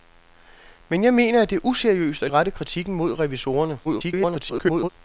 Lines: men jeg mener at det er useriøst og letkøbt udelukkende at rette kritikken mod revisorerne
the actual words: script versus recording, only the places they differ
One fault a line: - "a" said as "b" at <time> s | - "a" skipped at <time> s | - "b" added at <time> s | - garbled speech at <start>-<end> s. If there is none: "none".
- "letkøbt udelukkende" skipped at 2.3 s
- garbled speech at 3.8-4.9 s